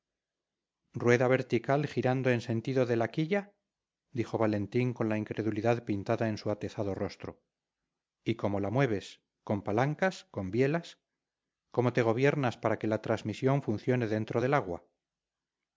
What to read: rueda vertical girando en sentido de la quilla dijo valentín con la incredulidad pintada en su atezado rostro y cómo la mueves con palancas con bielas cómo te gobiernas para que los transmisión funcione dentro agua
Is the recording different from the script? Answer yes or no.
yes